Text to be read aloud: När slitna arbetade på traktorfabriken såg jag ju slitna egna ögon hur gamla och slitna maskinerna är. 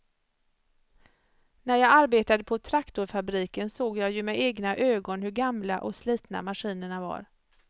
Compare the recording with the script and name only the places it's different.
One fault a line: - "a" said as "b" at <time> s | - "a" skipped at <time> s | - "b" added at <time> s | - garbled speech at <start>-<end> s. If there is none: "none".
- "slitna" said as "jag" at 1.8 s
- "slitna" said as "med" at 4.2 s
- "är" said as "var" at 7.0 s